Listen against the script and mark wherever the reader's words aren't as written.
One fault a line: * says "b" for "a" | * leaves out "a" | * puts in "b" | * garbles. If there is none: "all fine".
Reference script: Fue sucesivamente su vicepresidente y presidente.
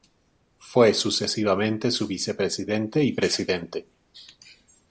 all fine